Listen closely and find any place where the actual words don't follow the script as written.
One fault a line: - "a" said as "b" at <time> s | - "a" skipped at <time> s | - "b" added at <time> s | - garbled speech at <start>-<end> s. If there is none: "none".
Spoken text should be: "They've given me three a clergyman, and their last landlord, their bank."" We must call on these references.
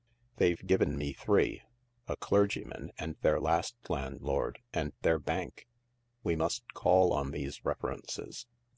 - "and" added at 4.7 s